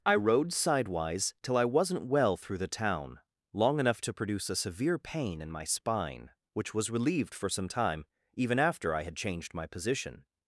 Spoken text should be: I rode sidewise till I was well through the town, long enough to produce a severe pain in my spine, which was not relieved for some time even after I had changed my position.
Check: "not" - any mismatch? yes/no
yes